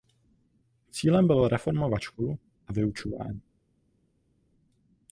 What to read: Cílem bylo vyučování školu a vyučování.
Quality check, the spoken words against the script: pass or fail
fail